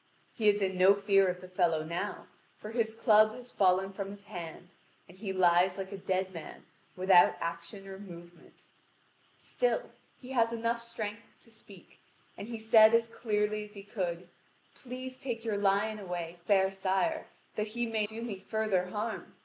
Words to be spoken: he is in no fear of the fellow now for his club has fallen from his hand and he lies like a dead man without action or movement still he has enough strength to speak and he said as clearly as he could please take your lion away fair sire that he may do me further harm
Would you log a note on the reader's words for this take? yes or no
no